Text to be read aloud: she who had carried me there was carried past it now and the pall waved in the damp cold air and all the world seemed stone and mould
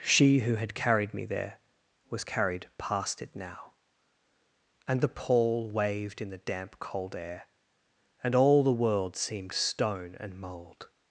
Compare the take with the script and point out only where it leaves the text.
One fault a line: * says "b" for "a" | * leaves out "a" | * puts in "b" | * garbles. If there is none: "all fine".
all fine